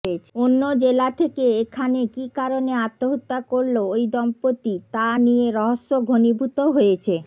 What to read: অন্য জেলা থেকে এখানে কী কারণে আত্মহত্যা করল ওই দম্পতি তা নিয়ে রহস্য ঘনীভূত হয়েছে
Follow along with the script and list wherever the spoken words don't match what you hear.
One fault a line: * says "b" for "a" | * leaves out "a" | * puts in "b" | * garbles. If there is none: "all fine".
all fine